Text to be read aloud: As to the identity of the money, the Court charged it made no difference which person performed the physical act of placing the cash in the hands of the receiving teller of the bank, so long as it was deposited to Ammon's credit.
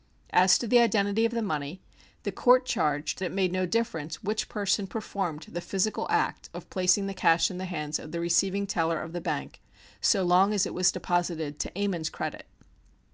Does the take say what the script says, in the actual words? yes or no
yes